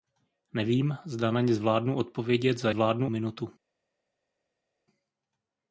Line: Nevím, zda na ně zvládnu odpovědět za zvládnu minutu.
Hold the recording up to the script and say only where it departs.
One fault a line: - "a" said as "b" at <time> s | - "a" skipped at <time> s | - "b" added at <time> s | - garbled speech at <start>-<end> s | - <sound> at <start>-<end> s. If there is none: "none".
none